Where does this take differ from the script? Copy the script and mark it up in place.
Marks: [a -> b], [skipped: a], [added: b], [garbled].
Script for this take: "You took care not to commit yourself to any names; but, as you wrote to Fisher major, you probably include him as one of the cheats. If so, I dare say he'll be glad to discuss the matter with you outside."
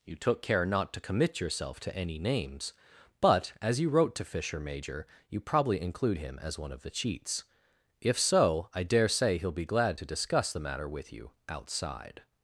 "You took care not to commit yourself to any names; but, as you wrote to Fisher major, you probably include him as one of the cheats. If so, I dare say he'll be glad to discuss the matter with you outside."